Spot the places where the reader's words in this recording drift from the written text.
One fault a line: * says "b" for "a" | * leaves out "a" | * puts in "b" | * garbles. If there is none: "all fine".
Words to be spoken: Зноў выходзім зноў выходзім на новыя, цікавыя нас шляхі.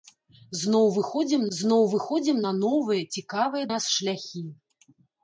all fine